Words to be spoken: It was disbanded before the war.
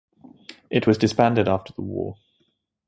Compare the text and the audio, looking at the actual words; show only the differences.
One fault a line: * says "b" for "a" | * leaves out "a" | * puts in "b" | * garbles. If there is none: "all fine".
* says "after" for "before"